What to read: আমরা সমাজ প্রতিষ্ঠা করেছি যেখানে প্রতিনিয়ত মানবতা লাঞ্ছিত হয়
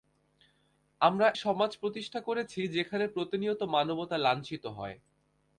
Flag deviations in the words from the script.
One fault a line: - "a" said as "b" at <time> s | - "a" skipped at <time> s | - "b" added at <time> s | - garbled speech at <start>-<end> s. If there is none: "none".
none